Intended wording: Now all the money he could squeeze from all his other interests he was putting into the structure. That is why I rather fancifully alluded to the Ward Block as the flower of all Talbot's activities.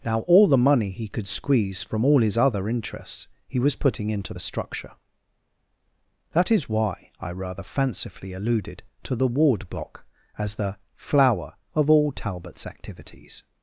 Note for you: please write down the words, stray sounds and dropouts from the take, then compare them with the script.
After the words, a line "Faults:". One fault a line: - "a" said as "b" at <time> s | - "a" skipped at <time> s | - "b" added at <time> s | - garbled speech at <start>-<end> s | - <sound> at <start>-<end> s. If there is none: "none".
Now all the money he could squeeze from all his other interests he was putting into the structure. That is why I rather fancifully alluded to the Ward Block as the flower of all Talbot's activities.
Faults:
none